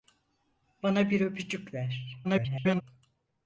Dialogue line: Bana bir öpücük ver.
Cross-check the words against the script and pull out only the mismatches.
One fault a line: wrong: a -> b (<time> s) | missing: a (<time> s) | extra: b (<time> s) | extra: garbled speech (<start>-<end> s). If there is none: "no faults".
extra: garbled speech (2.2-2.8 s)